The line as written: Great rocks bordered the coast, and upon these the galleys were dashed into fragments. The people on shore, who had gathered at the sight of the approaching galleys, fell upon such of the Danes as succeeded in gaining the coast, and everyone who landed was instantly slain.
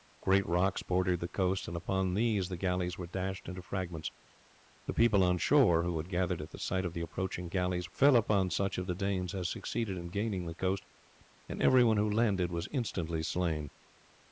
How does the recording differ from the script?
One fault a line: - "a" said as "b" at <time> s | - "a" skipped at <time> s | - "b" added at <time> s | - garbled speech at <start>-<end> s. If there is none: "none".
none